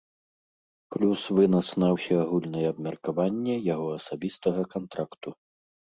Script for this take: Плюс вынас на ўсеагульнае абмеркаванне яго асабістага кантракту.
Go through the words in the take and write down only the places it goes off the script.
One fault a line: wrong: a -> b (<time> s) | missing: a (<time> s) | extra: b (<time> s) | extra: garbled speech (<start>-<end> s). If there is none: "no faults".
no faults